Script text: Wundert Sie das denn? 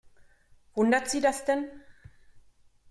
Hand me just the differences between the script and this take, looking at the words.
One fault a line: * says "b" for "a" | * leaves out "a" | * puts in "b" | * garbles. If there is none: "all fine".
all fine